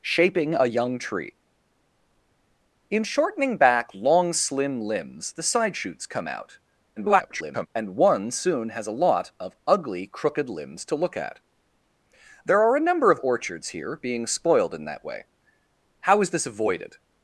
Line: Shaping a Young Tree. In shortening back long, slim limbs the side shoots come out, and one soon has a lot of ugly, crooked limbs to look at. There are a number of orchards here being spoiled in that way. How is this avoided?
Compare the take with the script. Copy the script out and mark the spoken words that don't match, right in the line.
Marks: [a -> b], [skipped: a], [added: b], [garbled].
Shaping a Young Tree. In shortening back long, slim limbs the side shoots come out, [garbled] and one soon has a lot of ugly, crooked limbs to look at. There are a number of orchards here being spoiled in that way. How is this avoided?